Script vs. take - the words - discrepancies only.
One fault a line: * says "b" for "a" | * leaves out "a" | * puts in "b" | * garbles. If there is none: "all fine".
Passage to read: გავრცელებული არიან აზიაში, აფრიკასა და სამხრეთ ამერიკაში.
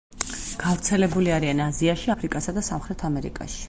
all fine